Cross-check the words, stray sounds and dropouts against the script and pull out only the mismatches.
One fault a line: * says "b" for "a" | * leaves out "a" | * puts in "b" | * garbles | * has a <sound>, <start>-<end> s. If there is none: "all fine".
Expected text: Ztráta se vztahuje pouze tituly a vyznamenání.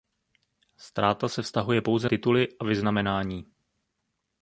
all fine